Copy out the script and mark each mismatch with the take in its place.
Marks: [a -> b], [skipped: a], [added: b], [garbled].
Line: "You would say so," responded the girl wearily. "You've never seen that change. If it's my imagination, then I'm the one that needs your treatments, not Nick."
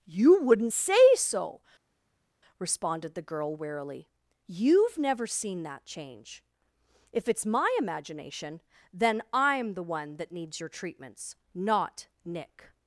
"You [would -> wouldn't] say so," responded the girl wearily. "You've never seen that change. If it's my imagination, then I'm the one that needs your treatments, not Nick."